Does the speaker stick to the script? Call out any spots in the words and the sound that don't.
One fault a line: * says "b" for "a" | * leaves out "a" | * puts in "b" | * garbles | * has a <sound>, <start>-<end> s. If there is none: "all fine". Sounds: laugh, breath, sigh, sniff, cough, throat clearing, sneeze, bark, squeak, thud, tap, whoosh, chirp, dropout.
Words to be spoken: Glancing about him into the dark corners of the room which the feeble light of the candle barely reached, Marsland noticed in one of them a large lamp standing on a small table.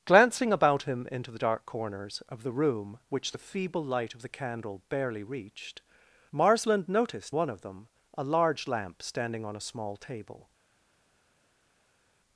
* leaves out "in"